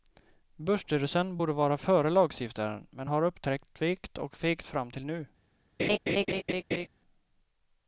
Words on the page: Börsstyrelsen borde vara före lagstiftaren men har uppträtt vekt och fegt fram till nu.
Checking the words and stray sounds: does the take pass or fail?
fail